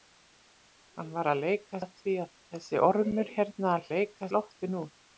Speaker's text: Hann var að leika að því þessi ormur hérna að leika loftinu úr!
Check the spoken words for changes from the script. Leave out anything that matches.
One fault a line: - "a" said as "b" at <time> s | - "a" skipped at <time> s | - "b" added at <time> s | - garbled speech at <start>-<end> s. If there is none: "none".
none